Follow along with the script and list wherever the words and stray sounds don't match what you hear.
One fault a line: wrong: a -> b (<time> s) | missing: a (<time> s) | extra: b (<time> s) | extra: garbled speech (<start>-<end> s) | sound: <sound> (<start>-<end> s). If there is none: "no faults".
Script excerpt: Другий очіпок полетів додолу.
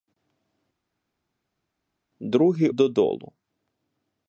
missing: очіпок полетів (2.7 s)